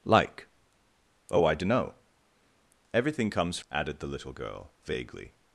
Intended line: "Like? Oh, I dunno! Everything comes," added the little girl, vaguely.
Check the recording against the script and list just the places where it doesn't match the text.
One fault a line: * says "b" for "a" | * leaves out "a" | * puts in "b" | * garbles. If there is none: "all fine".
all fine